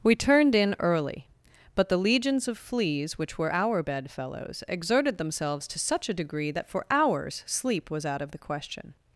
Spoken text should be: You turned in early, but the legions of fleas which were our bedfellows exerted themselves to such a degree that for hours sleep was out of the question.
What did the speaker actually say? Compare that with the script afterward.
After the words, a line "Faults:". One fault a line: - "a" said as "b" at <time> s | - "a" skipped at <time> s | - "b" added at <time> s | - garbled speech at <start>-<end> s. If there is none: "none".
We turned in early, but the legions of fleas which were our bedfellows exerted themselves to such a degree that for hours sleep was out of the question.
Faults:
- "You" said as "We" at 0.0 s